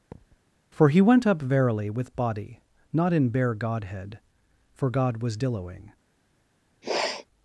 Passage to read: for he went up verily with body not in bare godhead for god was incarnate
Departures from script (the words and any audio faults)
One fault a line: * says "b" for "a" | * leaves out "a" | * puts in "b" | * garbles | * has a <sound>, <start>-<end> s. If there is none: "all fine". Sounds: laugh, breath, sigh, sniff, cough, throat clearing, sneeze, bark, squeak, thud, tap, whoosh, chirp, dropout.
* has a thud, 0.1-0.4 s
* says "dilloing" for "incarnate"
* has a sniff, 6.8-7.3 s